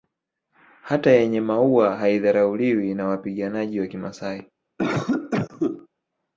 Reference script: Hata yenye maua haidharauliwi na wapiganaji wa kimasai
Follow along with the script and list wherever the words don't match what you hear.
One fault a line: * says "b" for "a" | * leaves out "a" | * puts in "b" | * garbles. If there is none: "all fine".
all fine